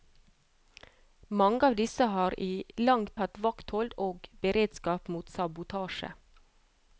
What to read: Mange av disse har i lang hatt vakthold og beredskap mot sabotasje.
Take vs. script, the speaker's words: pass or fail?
pass